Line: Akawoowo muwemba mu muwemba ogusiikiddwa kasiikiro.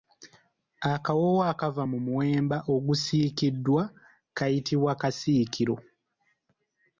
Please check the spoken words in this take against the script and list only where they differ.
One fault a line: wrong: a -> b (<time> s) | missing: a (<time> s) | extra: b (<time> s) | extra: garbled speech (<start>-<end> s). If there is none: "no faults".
wrong: muwemba -> akava (1.5 s)
extra: kayitibwa (4.4 s)